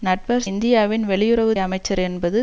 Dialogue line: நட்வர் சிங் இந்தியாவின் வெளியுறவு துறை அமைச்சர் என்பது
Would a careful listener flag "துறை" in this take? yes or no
yes